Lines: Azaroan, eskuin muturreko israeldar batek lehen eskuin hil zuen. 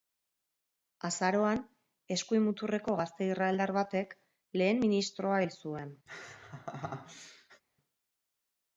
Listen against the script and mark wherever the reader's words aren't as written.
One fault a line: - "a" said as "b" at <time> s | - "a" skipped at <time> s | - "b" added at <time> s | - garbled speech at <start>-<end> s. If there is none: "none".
- "gazte" added at 3.0 s
- "eskuin" said as "ministroa" at 4.9 s